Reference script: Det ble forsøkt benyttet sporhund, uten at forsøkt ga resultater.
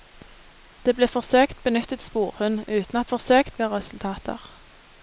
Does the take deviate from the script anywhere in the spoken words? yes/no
no